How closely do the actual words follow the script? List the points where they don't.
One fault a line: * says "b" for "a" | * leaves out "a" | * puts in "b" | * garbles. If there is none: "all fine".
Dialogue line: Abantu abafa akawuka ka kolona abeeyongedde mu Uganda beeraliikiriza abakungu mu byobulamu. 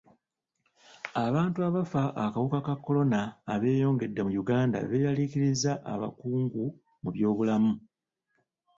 all fine